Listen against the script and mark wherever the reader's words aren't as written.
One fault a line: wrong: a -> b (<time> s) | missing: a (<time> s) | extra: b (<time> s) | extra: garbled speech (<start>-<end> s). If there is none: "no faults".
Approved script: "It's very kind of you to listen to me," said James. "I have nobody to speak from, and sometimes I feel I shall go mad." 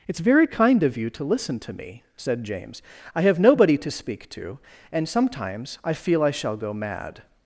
wrong: from -> to (4.3 s)